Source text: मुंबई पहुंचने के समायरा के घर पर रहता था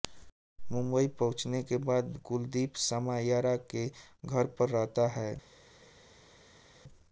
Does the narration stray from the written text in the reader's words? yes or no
yes